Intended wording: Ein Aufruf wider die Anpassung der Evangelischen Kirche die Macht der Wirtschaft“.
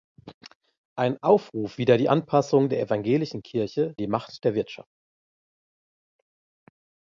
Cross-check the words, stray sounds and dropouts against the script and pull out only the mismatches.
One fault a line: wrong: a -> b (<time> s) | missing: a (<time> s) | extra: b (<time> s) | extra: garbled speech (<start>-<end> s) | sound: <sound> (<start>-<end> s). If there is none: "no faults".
no faults